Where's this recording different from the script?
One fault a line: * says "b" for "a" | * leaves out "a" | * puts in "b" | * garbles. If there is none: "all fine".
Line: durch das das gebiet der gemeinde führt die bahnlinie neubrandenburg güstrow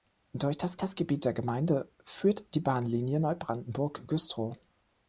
all fine